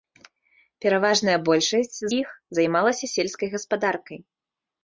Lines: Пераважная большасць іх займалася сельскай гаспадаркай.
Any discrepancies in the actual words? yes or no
no